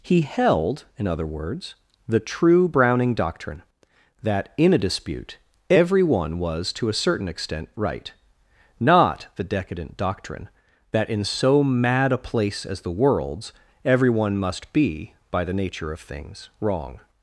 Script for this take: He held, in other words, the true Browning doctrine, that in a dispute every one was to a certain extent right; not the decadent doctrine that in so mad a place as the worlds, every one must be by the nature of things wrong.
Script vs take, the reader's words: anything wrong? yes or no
no